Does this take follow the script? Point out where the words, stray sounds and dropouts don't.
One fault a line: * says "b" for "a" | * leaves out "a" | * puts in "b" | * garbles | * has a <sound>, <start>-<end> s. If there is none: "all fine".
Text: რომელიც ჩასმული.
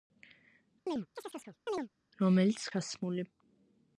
* has a chirp, 0.9-1.9 s